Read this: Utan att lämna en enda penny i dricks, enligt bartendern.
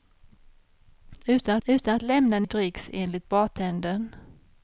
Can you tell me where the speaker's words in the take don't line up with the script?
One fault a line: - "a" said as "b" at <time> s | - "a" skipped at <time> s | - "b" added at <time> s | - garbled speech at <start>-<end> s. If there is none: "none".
- "utan" added at 1.7 s
- "enda penny" skipped at 2.5 s